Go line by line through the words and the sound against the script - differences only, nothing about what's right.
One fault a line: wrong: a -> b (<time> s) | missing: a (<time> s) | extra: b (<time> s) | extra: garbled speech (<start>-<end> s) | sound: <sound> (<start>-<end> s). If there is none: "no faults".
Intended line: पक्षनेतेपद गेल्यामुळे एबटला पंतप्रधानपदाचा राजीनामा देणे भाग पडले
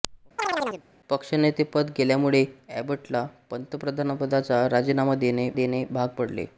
sound: chirp (0.4-0.8 s)
extra: देणे (5.5 s)